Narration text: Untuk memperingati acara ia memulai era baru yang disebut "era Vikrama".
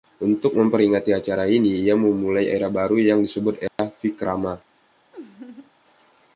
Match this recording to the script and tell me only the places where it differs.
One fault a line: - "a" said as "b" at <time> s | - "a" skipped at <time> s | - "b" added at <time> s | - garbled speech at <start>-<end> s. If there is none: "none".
- "ini" added at 1.4 s